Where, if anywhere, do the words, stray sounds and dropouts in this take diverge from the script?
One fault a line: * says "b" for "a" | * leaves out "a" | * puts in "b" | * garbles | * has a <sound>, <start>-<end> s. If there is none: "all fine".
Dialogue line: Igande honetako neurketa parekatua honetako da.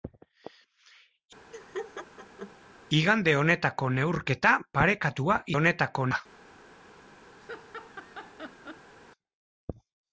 * has a laugh, 1.5-2.5 s
* has a laugh, 7.4-8.9 s